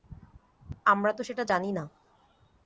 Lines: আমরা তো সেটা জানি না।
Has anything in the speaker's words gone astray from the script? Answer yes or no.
no